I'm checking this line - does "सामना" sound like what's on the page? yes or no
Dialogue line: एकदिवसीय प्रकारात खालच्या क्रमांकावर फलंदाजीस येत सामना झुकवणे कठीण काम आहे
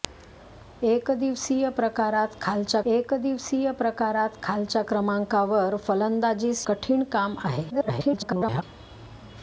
no